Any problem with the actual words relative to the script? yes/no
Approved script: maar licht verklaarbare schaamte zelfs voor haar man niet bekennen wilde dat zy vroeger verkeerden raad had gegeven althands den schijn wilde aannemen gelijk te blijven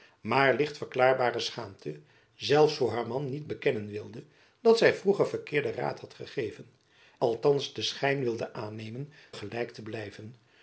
no